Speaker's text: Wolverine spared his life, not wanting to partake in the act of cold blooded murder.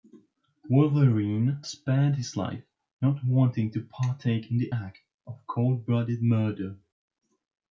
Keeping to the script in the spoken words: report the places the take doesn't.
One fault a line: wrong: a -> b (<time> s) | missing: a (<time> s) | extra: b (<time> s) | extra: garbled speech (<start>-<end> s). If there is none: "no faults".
no faults